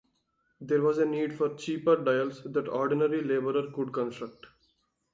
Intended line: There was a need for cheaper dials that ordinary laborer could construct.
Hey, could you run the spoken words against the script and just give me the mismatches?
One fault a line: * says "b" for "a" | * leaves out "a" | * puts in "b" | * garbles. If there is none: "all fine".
all fine